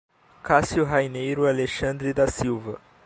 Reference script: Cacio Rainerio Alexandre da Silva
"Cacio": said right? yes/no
yes